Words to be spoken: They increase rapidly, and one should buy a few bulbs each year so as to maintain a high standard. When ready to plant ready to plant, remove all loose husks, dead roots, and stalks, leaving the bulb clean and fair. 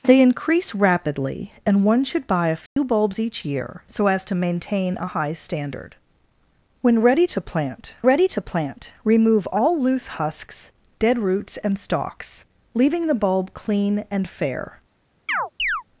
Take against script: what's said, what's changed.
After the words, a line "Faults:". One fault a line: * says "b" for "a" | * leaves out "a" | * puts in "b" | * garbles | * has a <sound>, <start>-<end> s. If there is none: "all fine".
They increase rapidly, and one should buy a few bulbs each year so as to maintain a high standard. When ready to plant ready to plant, remove all loose husks, dead roots, and stalks, leaving the bulb clean and fair.
Faults:
* has a dropout, 2.7-2.8 s
* has a chirp, 15.3-15.8 s